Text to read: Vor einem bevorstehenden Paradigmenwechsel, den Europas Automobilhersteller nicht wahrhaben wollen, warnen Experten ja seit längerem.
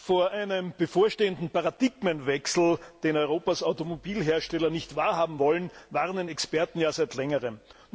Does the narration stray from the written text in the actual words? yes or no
no